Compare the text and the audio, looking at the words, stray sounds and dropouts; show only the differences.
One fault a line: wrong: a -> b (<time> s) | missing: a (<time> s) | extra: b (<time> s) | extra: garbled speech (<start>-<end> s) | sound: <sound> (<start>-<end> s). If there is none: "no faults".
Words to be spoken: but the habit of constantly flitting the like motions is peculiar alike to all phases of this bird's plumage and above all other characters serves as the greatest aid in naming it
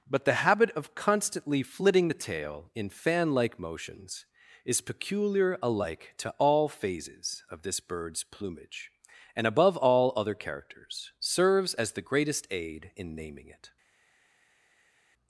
extra: tail in fan (2.1 s)